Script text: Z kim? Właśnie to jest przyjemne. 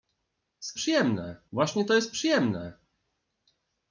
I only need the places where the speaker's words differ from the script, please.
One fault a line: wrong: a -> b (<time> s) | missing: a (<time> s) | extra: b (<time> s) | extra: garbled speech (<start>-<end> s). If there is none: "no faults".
wrong: kim -> przyjemne (0.7 s)